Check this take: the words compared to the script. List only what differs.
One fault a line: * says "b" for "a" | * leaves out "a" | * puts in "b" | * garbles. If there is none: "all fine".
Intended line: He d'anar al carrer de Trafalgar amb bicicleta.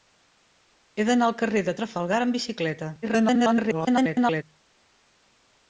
* garbles